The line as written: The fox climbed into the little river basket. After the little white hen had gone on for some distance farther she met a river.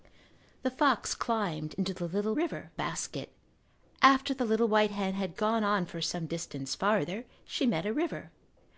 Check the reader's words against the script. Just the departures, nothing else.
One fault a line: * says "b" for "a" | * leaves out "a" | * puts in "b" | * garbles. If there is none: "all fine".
all fine